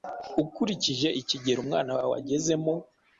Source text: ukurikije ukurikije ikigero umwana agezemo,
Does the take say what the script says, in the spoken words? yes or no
no